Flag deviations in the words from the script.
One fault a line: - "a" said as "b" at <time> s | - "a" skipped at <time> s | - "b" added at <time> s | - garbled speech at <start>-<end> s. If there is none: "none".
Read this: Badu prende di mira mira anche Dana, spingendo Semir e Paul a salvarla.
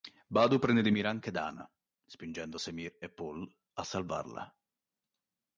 - "mira" skipped at 1.1 s